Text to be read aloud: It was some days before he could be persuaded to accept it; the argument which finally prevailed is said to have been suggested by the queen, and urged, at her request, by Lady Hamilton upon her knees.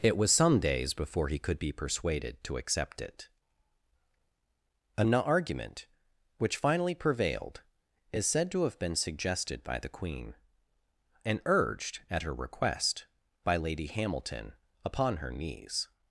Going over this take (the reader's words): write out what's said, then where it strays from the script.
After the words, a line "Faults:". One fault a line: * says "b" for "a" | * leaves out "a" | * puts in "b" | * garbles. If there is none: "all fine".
It was some days before he could be persuaded to accept it; an argument which finally prevailed is said to have been suggested by the queen, and urged, at her request, by Lady Hamilton upon her knees.
Faults:
* says "an" for "the"